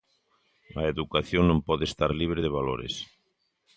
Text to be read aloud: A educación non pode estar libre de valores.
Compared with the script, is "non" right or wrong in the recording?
right